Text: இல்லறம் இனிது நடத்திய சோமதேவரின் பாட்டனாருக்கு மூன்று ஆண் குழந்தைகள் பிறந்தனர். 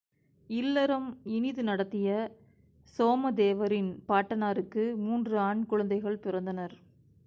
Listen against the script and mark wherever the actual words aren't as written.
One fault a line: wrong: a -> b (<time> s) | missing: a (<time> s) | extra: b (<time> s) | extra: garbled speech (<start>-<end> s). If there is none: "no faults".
no faults